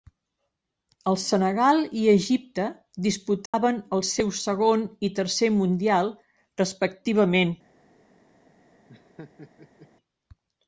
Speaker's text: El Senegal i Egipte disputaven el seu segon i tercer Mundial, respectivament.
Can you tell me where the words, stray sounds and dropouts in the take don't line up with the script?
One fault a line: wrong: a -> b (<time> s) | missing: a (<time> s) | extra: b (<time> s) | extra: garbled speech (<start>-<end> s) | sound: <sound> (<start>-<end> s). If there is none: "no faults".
sound: dropout (3.5-3.5 s)
sound: laugh (8.9-9.9 s)